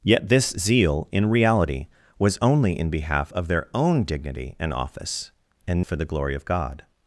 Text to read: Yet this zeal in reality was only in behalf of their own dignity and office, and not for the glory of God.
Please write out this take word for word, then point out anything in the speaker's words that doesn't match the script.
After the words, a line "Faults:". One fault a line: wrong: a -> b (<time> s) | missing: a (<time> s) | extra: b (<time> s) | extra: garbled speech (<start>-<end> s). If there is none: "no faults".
Yet this zeal in reality was only in behalf of their own dignity and office, and for the glory of God.
Faults:
missing: not (5.8 s)